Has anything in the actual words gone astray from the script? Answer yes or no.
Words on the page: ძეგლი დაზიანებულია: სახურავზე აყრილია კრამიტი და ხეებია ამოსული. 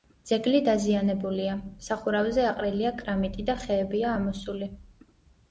no